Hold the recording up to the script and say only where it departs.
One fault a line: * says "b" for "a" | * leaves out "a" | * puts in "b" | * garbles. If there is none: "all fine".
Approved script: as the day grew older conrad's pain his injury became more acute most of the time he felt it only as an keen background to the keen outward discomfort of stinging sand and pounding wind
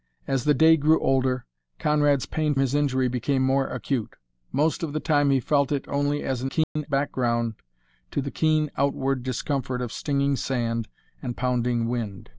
all fine